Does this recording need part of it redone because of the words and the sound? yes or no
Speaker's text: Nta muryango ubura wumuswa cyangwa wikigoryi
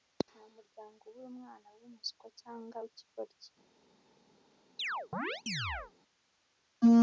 yes